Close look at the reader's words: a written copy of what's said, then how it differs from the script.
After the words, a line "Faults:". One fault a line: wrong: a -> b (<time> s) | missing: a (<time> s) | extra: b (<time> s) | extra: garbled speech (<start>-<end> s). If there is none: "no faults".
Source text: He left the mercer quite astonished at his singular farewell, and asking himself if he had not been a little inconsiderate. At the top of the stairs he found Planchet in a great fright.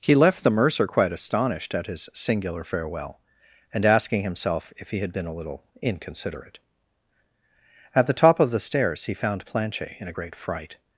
He left the mercer quite astonished at his singular farewell, and asking himself if he had been a little inconsiderate. At the top of the stairs he found Planchet in a great fright.
Faults:
missing: not (5.1 s)